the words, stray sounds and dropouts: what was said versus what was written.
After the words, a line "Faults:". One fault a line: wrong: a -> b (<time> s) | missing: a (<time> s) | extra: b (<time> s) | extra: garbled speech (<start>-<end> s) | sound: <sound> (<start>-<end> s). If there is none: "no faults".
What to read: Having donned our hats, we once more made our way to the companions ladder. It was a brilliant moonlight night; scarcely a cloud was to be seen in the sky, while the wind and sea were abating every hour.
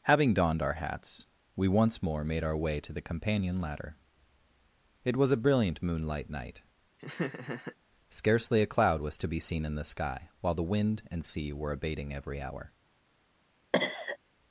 Having donned our hats, we once more made our way to the companion ladder. It was a brilliant moonlight night; scarcely a cloud was to be seen in the sky, while the wind and sea were abating every hour.
Faults:
wrong: companions -> companion (3.0 s)
sound: laugh (7.0-7.8 s)
sound: cough (13.7-14.2 s)